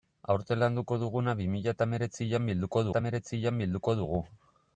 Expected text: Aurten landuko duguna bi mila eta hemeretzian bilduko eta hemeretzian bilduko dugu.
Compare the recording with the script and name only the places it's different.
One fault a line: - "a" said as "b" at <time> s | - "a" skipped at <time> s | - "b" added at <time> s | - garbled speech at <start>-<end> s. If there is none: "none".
none